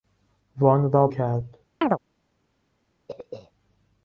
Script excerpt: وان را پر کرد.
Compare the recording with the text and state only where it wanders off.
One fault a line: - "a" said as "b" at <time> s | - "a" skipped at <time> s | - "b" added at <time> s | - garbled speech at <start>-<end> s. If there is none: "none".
- "پر" skipped at 1.1 s